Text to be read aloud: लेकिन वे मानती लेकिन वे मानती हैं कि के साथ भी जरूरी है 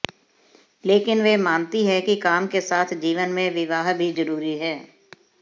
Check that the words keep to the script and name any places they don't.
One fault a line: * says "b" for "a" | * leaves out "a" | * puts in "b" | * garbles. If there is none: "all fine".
* leaves out "लेकिन वे मानती"
* puts in "काम"
* puts in "जीवन में विवाह"